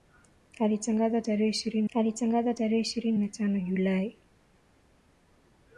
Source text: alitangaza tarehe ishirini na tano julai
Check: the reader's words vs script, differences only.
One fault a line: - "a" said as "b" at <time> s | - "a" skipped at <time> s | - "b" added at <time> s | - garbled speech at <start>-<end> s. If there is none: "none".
- "alitangaza tarehe ishirini" added at 1.9 s